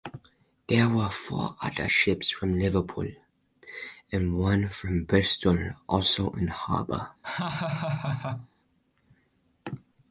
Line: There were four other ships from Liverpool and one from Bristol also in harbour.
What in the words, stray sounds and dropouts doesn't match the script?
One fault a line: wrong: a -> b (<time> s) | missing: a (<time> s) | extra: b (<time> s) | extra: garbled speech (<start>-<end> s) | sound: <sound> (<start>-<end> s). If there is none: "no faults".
sound: laugh (7.2-8.5 s)